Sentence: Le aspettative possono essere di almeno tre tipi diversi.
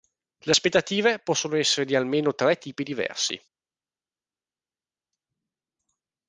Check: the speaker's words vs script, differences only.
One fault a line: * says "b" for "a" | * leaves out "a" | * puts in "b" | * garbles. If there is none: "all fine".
all fine